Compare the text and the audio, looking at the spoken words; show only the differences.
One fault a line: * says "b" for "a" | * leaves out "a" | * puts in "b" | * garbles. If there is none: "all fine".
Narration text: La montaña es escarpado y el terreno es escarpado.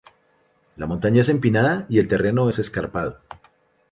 * says "empinada" for "escarpado"